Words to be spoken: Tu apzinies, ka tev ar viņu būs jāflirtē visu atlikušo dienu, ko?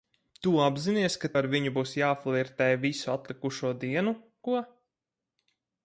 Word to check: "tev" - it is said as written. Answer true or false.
false